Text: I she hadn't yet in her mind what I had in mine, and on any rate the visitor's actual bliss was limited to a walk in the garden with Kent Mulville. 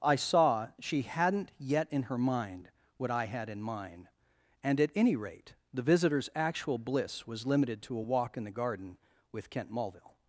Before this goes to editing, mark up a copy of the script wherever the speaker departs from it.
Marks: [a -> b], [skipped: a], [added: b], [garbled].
I [added: saw] she hadn't yet in her mind what I had in mine, and [on -> at] any rate the visitor's actual bliss was limited to a walk in the garden with Kent Mulville.